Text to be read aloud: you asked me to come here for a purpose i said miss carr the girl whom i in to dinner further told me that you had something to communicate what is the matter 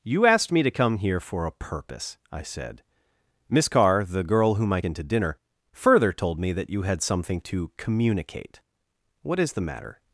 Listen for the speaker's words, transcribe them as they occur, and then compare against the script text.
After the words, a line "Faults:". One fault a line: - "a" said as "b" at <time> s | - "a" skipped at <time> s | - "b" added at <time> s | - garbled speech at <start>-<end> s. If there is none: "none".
you asked me to come here for a purpose i said miss carr the girl whom i in to dinner further told me that you had something to communicate what is the matter
Faults:
none